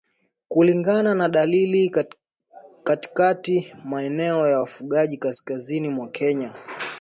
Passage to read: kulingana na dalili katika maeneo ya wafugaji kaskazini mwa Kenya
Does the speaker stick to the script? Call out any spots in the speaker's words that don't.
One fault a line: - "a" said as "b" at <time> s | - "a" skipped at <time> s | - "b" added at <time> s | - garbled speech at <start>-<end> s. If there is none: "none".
none